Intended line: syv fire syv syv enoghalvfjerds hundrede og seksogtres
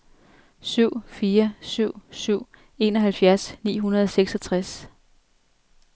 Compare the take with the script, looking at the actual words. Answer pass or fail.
fail